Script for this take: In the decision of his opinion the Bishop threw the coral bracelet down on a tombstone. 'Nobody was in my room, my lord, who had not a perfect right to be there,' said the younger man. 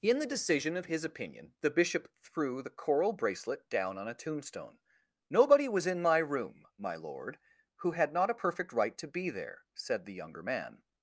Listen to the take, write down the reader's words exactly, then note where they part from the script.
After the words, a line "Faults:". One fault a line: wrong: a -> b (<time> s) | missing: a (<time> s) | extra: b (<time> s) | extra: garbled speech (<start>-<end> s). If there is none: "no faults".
In the decision of his opinion the Bishop threw the coral bracelet down on a tombstone. 'Nobody was in my room, my lord, who had not a perfect right to be there,' said the younger man.
Faults:
no faults